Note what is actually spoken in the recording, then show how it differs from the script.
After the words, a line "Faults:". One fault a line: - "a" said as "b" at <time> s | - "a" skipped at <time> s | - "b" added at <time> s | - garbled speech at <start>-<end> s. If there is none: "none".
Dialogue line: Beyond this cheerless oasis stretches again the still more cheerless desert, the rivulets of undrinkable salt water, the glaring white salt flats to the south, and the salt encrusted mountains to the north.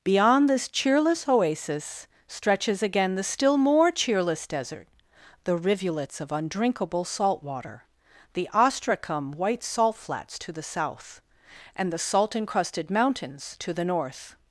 Beyond this cheerless oasis stretches again the still more cheerless desert, the rivulets of undrinkable salt water, the ostracum white salt flats to the south, and the salt encrusted mountains to the north.
Faults:
- "glaring" said as "ostracum" at 8.5 s